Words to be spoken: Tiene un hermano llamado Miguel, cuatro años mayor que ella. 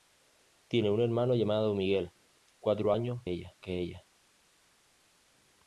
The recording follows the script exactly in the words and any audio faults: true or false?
false